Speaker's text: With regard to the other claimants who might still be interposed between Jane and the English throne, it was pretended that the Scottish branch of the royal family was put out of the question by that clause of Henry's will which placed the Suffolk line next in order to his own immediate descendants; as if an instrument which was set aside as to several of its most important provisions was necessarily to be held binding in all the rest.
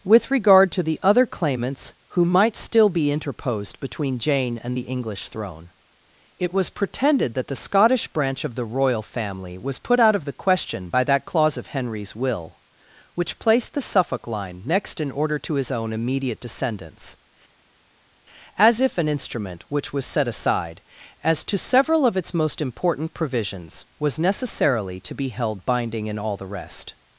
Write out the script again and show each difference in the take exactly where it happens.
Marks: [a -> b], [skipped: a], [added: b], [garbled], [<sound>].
With regard to the other claimants who might still be interposed between Jane and the English throne, it was pretended that the Scottish branch of the royal family was put out of the question by that clause of Henry's will which placed the Suffolk line next in order to his own immediate descendants; as if an instrument which was set aside as to several of its most important provisions was necessarily to be held binding in all the rest.